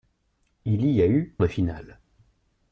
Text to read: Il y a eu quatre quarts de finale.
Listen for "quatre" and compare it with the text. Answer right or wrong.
wrong